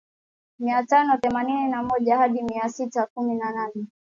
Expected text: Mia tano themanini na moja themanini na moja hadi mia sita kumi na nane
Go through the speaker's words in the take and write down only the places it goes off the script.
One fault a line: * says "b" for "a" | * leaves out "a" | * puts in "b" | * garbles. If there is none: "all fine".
* leaves out "themanini na moja"